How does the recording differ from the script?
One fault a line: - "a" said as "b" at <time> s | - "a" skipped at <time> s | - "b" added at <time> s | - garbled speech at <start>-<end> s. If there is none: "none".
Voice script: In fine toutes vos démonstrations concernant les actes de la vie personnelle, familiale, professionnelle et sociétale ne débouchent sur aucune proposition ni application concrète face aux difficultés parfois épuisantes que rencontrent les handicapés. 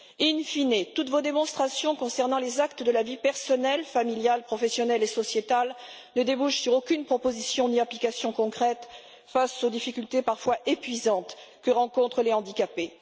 none